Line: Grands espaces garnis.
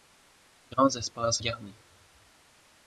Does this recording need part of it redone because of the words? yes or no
no